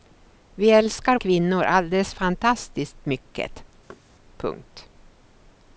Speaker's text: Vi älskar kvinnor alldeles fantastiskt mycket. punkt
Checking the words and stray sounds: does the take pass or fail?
fail